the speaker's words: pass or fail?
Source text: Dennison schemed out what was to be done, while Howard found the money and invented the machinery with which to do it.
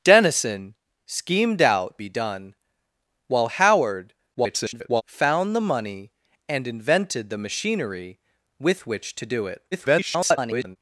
fail